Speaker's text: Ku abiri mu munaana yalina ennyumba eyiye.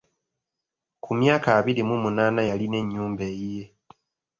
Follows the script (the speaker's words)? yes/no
no